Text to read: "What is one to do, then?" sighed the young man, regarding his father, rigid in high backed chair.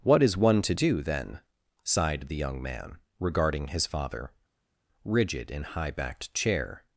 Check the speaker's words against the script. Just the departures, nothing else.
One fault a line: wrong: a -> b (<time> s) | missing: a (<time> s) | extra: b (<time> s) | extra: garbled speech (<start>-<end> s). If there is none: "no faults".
no faults